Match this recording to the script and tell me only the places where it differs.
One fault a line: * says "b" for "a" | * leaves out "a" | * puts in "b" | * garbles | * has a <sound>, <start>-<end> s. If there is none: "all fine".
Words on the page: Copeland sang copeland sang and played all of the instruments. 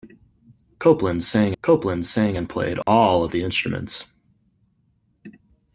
* has a dropout, 2.8-2.9 s